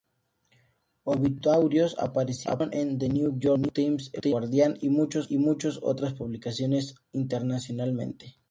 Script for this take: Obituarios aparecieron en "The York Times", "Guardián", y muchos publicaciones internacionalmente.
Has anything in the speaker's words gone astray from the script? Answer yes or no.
yes